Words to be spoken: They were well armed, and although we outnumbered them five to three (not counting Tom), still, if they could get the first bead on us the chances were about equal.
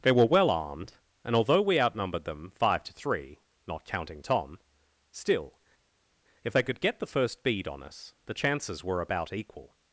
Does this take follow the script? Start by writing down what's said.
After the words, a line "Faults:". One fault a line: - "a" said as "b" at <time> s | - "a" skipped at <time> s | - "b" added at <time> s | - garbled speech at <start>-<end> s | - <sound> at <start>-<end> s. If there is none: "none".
They were well armed, and although we outnumbered them five to three (not counting Tom), still, if they could get the first bead on us the chances were about equal.
Faults:
none